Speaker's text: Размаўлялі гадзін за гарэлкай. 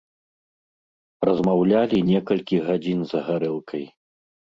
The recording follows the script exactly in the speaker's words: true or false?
false